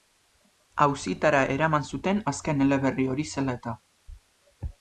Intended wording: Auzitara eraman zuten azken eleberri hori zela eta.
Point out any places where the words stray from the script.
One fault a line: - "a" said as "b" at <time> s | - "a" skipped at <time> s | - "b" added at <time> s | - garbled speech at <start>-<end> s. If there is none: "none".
none